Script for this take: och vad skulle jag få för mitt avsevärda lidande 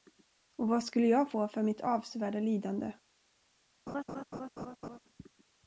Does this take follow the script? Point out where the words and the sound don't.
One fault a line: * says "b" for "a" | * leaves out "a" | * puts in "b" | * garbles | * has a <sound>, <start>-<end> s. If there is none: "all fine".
* has a laugh, 3.9-5.0 s